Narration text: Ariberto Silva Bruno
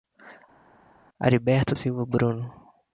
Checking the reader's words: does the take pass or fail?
pass